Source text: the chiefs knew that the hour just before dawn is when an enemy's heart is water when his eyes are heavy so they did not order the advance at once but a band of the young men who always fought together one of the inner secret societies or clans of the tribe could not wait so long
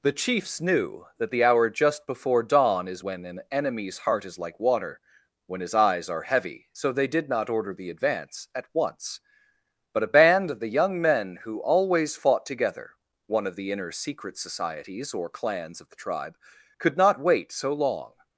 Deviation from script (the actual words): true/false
true